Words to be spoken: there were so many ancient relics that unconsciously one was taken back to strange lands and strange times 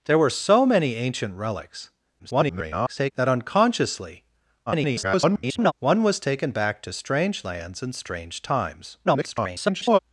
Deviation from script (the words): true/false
true